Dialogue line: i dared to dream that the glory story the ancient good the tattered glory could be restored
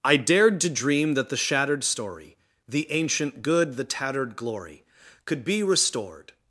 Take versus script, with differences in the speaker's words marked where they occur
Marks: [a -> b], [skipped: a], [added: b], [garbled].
i dared to dream that the [glory -> shattered] story the ancient good the tattered glory could be restored